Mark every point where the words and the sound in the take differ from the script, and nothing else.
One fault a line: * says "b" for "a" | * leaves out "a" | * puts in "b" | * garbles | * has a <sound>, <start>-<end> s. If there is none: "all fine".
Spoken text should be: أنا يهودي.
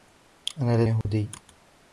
* has a dropout, 1.0-1.0 s